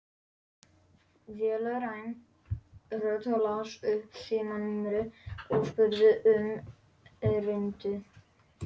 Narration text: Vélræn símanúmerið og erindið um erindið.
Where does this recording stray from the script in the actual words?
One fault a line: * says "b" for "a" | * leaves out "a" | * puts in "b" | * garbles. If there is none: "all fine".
* puts in "rödd las upp"
* says "spurði" for "erindið"